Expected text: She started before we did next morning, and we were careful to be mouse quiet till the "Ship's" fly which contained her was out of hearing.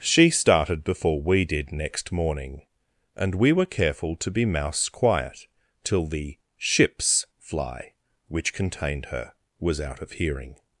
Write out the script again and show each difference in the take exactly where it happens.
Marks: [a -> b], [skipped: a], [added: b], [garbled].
She started before we did next morning, and we were careful to be mouse quiet till the "Ship's" fly which contained her was out of hearing.